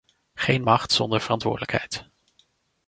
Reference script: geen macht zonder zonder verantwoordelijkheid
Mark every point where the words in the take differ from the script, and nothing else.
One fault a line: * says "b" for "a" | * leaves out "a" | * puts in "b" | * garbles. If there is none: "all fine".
* leaves out "zonder"